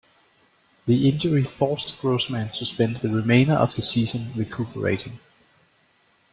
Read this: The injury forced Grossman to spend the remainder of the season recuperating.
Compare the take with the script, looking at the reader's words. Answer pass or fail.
pass